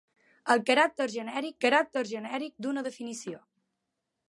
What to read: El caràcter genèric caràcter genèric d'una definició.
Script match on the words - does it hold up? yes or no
yes